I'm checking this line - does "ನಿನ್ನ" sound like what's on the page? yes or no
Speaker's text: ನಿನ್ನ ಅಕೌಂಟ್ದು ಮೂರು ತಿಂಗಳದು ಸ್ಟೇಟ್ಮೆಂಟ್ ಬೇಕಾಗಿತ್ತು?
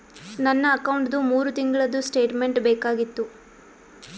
no